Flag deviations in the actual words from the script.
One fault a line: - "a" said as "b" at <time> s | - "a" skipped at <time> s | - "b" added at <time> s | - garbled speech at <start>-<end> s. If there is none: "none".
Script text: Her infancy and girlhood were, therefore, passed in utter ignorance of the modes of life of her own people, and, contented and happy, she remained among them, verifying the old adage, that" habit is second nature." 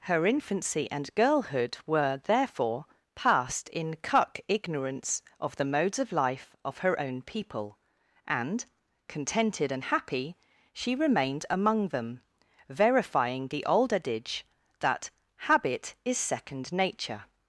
- "utter" said as "cuck" at 3.9 s